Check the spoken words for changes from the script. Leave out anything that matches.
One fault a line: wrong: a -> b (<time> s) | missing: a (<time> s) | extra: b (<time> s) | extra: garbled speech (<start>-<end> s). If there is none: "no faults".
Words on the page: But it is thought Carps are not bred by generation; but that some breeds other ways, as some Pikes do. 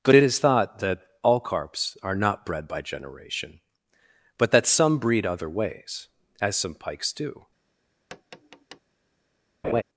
extra: that all (0.8 s)
wrong: breeds -> breed (5.0 s)